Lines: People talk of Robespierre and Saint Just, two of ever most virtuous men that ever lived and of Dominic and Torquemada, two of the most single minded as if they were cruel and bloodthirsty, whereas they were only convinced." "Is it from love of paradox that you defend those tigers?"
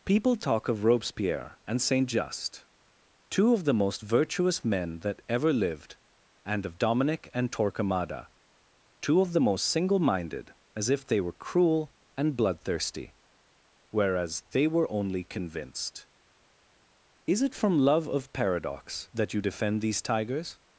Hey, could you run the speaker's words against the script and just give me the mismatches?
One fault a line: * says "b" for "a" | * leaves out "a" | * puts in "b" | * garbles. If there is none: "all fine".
* says "the" for "ever"
* says "these" for "those"